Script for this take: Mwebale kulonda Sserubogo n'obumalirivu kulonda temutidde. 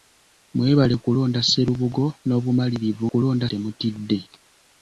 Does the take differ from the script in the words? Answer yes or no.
no